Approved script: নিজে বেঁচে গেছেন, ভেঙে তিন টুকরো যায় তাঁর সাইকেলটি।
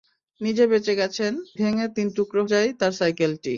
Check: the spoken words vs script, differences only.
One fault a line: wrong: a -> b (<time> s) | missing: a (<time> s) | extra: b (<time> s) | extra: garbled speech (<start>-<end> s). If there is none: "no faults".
no faults